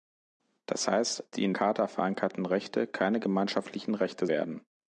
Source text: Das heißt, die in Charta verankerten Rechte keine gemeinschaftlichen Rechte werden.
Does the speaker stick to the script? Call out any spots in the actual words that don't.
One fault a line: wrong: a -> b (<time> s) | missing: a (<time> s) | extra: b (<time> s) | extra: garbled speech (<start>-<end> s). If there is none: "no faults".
no faults